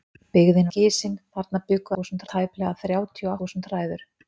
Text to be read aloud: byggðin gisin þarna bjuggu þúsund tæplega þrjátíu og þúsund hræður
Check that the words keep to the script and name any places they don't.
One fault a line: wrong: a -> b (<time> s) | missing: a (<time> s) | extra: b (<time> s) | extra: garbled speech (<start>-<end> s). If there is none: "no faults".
no faults